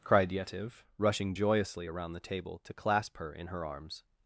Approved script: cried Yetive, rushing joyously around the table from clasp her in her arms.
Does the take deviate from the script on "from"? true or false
true